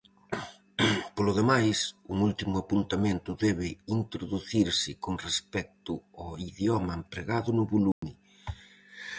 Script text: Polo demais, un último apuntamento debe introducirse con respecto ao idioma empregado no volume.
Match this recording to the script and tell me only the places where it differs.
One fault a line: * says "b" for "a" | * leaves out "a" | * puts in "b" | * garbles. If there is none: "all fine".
all fine